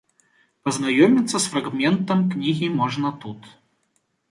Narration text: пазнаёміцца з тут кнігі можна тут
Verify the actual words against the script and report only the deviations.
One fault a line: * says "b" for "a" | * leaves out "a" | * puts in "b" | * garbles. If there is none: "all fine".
* says "фрагментам" for "тут"